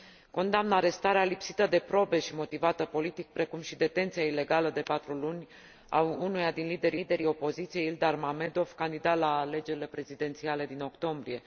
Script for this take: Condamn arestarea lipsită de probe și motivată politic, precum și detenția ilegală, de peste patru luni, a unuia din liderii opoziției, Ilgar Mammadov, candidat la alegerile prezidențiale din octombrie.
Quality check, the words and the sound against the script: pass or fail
fail